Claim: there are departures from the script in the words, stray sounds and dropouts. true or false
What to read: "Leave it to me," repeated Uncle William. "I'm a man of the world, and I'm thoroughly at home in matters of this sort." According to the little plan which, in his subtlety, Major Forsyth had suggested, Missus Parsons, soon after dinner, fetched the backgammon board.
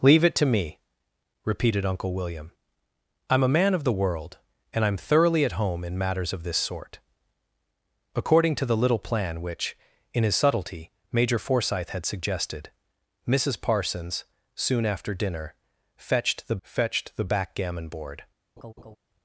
true